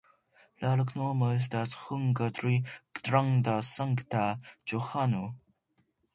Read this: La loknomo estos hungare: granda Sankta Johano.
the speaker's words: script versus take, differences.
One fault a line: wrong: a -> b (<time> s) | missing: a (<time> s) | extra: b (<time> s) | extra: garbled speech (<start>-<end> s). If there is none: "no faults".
wrong: estos -> estas (1.3 s)